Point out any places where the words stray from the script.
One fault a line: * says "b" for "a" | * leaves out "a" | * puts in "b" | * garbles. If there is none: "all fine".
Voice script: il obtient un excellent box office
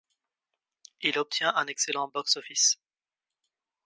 all fine